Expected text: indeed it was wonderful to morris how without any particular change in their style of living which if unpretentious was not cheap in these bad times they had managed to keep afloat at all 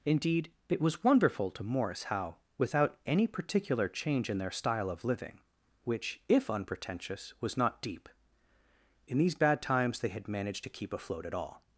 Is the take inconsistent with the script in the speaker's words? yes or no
yes